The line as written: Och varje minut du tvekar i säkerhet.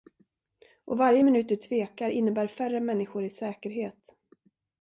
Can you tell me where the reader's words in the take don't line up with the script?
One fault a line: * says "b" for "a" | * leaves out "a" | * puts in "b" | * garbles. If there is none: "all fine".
* puts in "innebär färre människor"